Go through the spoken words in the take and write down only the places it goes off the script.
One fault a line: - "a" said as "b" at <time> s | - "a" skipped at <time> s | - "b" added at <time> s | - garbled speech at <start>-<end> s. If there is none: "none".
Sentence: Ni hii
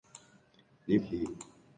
none